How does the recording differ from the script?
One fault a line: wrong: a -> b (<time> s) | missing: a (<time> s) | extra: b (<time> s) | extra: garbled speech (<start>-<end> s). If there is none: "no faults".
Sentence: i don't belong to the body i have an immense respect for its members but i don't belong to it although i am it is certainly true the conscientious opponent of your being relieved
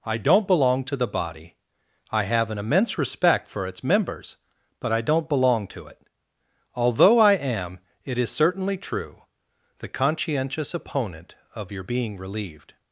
no faults